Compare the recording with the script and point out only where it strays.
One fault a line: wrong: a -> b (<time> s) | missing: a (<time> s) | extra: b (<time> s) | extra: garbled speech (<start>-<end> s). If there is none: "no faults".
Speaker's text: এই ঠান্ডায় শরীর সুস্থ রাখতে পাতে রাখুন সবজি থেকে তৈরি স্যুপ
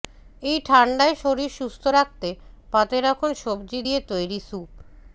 wrong: থেকে -> দিয়ে (3.8 s)